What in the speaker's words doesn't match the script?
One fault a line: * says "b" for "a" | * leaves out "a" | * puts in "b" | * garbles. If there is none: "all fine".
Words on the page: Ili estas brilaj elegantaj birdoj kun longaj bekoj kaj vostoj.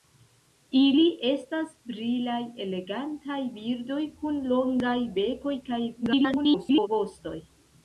* garbles